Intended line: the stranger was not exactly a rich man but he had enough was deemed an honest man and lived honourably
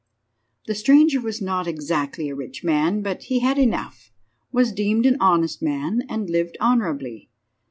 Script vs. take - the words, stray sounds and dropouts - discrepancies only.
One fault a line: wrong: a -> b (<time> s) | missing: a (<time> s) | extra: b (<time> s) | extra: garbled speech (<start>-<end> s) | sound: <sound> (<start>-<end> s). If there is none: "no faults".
no faults